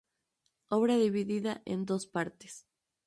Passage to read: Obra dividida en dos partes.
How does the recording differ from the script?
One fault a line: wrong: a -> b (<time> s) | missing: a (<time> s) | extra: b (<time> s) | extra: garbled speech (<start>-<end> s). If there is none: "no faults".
no faults